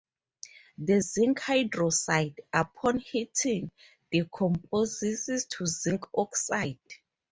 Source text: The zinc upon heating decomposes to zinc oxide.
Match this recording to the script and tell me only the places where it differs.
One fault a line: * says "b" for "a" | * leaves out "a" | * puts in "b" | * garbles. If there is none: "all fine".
* puts in "hydroxide"